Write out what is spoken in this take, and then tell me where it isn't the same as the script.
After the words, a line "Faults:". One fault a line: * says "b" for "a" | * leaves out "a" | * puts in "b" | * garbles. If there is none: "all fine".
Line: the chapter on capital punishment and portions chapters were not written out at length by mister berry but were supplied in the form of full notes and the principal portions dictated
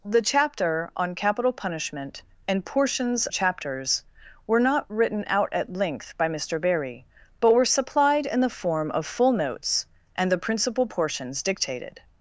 the chapter on capital punishment and portions chapters were not written out at length by mister berry but were supplied in the form of full notes and the principal portions dictated
Faults:
all fine